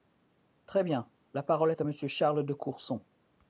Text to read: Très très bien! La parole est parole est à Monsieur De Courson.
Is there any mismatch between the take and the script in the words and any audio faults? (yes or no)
yes